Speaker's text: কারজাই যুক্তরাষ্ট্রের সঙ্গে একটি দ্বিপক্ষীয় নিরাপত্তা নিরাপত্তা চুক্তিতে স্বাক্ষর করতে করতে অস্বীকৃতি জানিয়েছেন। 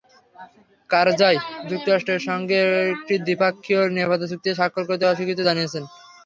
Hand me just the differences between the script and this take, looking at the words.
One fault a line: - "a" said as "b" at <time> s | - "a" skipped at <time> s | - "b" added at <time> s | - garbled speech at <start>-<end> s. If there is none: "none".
- "নিরাপত্তা" skipped at 4.3 s
- "করতে" skipped at 5.0 s